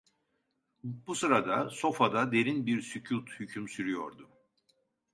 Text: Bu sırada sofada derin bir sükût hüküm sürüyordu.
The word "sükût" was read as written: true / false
true